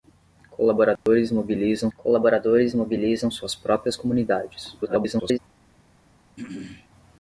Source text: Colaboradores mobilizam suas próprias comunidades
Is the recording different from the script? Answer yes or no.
yes